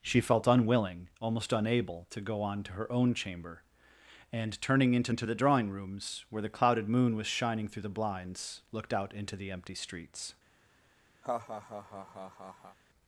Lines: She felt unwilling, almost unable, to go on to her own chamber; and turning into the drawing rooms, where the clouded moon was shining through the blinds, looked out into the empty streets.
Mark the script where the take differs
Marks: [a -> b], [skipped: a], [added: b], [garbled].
She felt unwilling, almost unable, to go on to her own chamber; and turning into [added: into] the drawing rooms, where the clouded moon was shining through the blinds, looked out into the empty streets.